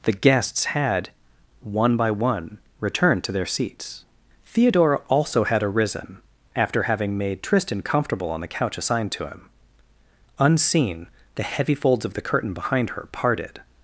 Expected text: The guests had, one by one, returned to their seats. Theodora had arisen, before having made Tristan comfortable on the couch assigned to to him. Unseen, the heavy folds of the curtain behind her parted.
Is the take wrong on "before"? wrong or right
wrong